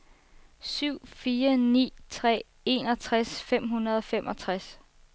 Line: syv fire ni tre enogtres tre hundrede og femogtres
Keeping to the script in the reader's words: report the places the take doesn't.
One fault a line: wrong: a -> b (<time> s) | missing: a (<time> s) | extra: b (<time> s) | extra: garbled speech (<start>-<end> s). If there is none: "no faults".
wrong: tre -> fem (3.4 s)